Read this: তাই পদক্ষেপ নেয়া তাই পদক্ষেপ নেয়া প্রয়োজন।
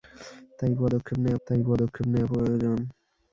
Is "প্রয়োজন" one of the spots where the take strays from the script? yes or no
no